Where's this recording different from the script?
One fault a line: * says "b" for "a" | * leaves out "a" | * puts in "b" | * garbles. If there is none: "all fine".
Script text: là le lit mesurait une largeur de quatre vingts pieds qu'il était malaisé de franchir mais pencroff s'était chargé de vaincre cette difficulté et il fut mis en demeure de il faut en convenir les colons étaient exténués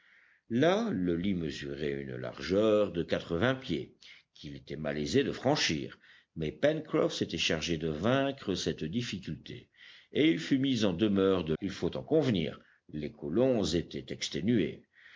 all fine